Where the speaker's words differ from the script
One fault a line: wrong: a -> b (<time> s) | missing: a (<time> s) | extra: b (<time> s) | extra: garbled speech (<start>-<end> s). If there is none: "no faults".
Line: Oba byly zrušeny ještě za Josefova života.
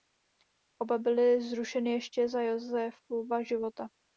no faults